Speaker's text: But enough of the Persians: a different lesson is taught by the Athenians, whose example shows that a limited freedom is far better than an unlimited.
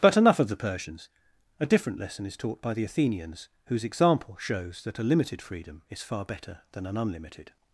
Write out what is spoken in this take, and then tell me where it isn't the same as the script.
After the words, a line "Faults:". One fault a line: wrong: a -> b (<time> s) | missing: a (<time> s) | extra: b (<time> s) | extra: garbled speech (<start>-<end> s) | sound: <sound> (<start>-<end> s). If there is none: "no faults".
But enough of the Persians: a different lesson is taught by the Athenians, whose example shows that a limited freedom is far better than an unlimited.
Faults:
no faults